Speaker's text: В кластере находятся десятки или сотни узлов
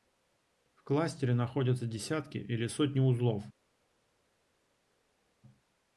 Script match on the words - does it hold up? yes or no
yes